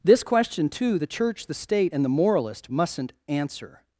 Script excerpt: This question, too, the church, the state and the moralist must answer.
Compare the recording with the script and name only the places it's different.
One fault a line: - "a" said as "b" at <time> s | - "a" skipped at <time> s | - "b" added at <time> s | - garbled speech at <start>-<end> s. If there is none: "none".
- "must" said as "mustn't" at 2.7 s